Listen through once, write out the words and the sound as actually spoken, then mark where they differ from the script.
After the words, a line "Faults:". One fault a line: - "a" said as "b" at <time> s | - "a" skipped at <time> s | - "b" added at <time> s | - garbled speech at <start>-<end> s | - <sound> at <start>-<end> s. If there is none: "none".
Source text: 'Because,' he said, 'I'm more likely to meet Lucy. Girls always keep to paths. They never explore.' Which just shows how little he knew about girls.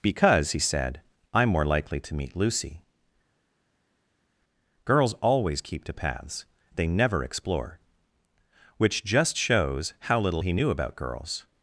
'Because,' he said, 'I'm more likely to meet Lucy. Girls always keep to paths. They never explore.' Which just shows how little he knew about girls.
Faults:
none